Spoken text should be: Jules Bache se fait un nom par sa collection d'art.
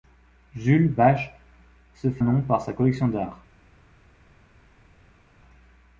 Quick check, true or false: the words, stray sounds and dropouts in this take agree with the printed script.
false